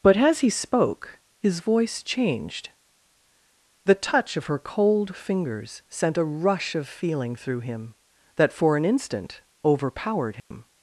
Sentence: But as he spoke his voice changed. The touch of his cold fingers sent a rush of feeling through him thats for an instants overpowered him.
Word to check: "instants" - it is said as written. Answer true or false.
false